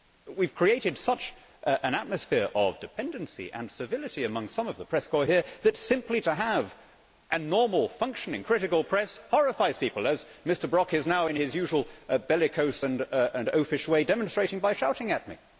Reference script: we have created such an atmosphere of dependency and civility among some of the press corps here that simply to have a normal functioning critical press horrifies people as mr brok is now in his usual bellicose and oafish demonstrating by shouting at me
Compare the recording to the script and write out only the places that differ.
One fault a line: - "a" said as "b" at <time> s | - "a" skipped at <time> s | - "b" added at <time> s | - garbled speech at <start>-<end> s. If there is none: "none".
- "way" added at 13.9 s